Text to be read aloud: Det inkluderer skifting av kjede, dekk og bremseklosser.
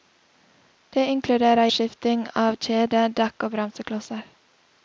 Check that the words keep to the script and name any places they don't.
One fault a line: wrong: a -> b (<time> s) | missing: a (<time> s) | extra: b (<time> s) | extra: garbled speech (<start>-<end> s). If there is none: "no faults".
no faults